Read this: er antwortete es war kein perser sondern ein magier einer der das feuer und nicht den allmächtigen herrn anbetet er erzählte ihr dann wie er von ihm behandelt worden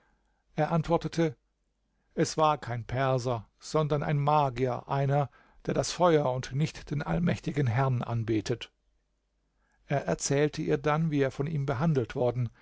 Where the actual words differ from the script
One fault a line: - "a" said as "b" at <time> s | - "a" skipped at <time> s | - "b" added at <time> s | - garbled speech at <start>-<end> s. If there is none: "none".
none